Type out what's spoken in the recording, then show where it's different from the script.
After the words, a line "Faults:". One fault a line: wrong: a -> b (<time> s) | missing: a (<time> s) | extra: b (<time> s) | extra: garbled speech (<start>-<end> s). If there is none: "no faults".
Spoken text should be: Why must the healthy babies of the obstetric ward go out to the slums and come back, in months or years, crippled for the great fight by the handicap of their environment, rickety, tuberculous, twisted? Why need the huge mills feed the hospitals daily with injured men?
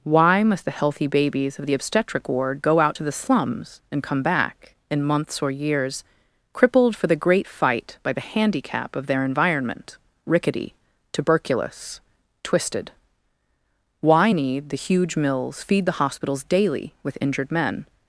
Why must the healthy babies of the obstetric ward go out to the slums and come back, in months or years, crippled for the great fight by the handicap of their environment, rickety, tuberculous, twisted? Why need the huge mills feed the hospitals daily with injured men?
Faults:
no faults